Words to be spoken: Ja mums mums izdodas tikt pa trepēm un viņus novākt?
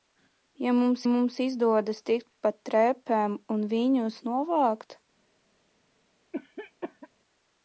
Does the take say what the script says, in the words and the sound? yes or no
no